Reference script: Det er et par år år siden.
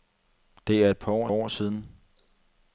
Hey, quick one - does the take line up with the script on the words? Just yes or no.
yes